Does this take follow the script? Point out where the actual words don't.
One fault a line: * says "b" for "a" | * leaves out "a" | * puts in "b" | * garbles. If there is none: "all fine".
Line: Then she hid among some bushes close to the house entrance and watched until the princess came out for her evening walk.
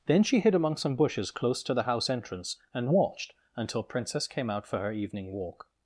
* leaves out "the"